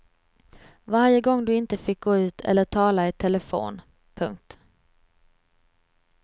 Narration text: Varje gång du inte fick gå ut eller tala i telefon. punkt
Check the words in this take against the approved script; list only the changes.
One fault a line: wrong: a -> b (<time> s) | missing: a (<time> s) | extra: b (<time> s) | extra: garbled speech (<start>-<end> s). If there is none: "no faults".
no faults